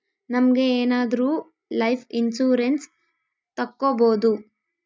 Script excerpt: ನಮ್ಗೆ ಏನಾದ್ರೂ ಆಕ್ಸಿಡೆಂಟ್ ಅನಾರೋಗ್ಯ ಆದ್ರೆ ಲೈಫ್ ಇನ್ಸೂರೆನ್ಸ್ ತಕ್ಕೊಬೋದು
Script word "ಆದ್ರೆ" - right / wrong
wrong